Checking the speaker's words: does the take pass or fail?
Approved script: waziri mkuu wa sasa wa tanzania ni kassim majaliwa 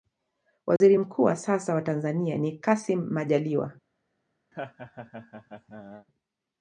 pass